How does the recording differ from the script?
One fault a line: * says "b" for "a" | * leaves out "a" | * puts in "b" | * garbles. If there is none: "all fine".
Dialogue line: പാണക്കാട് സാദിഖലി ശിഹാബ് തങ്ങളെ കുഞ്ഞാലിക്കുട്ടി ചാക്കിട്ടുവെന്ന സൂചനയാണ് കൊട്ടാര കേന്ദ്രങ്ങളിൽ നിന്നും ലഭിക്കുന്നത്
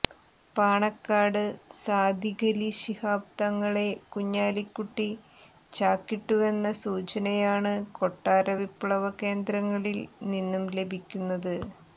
* puts in "വിപ്ലവ"